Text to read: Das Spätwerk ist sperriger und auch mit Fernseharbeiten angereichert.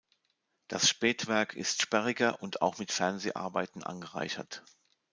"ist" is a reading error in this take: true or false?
false